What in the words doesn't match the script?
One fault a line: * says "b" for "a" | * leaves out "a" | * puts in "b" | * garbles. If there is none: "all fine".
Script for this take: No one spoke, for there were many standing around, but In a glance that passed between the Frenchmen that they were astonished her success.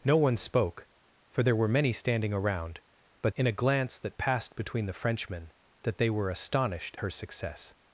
all fine